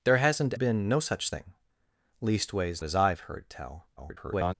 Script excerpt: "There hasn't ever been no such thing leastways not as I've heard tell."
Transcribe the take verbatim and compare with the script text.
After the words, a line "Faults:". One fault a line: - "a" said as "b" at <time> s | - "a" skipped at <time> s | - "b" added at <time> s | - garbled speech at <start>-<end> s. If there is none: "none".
"There hasn't been no such thing leastways as I've heard tell." [garbled]
Faults:
- "ever" skipped at 0.5 s
- "not" skipped at 2.8 s
- garbled speech at 4.0-4.5 s